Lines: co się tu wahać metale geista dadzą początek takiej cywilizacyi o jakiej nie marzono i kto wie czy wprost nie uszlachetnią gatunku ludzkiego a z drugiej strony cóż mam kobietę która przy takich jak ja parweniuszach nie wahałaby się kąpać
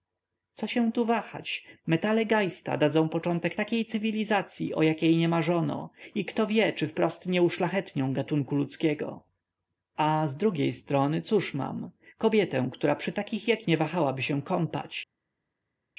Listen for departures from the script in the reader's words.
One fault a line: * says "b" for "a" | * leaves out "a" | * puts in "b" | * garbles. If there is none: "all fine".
* leaves out "ja parweniuszach"